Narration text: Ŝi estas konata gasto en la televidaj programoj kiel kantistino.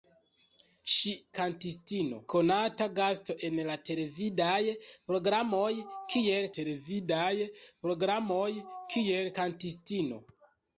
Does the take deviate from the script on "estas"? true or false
true